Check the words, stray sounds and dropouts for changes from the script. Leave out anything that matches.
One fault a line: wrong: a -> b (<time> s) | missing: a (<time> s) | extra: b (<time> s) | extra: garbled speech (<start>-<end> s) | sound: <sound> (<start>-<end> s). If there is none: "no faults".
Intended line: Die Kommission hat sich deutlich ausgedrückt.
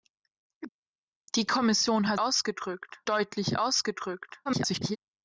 wrong: sich -> ausgedrückt (2.2 s)
extra: garbled speech (4.5-5.0 s)